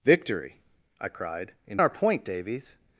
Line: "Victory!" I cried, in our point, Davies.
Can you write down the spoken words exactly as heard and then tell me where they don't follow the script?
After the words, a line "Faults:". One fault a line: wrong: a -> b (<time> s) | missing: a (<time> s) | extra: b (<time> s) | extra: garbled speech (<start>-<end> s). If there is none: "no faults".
"Victory!" I cried, in our point, Davies.
Faults:
no faults